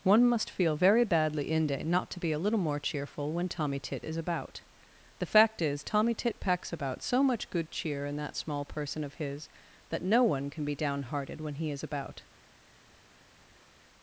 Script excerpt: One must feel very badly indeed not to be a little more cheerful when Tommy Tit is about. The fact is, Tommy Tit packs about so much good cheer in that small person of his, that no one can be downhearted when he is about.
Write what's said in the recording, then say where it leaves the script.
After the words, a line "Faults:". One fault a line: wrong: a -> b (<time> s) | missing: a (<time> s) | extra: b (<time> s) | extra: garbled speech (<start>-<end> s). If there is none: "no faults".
One must feel very badly inde not to be a little more cheerful when Tommy Tit is about. The fact is, Tommy Tit packs about so much good cheer in that small person of his, that no one can be downhearted when he is about.
Faults:
wrong: indeed -> inde (1.5 s)